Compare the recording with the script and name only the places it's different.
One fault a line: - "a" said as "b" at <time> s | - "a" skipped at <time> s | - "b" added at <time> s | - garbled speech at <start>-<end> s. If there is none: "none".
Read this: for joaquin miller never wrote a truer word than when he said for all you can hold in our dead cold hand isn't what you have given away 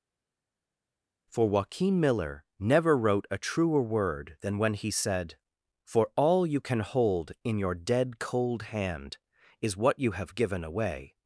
- "our" said as "your" at 7.6 s
- "isn't" said as "is" at 9.6 s